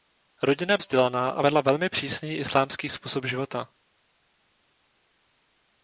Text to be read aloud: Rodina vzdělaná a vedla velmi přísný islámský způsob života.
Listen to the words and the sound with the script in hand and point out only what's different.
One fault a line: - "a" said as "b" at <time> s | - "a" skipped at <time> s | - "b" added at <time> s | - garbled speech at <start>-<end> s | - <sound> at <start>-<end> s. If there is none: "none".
none